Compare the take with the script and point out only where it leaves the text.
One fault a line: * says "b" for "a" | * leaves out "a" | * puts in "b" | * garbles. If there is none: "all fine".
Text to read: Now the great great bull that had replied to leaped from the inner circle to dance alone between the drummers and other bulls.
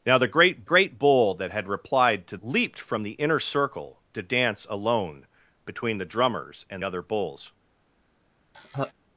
all fine